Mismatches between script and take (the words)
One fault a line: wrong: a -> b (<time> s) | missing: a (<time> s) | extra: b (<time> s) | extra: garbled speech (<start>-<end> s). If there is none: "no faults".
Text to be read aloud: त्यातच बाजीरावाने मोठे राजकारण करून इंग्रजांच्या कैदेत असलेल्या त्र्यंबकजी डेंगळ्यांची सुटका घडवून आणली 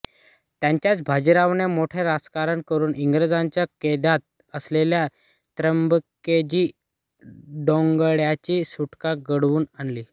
no faults